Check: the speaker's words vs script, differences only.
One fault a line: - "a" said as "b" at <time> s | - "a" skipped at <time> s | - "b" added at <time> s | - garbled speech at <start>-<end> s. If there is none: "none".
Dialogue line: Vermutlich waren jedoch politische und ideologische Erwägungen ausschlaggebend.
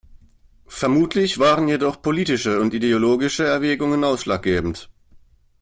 none